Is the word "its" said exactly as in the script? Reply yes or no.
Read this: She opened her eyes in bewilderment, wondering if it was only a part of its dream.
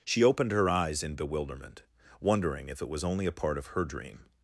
no